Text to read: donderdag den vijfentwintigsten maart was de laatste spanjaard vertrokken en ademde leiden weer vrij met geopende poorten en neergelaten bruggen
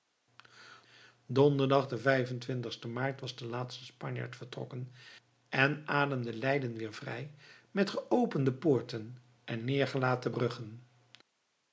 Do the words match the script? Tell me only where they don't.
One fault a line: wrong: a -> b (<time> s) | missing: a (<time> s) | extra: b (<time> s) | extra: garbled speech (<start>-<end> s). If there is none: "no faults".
no faults